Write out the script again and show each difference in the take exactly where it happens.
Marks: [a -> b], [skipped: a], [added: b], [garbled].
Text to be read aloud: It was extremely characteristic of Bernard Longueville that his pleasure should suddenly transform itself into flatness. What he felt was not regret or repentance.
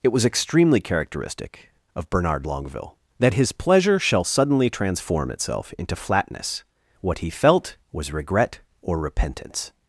It was extremely characteristic of Bernard Longueville that his pleasure [should -> shall] suddenly transform itself into flatness. What he felt was [skipped: not] regret or repentance.